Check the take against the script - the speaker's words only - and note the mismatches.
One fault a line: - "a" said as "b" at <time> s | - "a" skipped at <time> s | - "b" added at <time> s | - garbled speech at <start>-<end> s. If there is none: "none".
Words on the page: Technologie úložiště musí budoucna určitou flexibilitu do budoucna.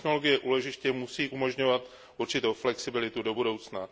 - "budoucna" said as "umožňovat" at 1.3 s